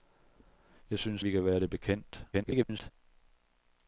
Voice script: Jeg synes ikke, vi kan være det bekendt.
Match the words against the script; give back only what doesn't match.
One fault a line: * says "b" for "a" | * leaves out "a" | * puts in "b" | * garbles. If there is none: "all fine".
* leaves out "ikke"
* garbles